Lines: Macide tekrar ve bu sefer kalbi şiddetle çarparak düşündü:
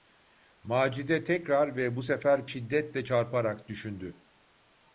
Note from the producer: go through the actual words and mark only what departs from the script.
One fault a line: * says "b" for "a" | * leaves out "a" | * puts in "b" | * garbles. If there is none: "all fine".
* leaves out "kalbi"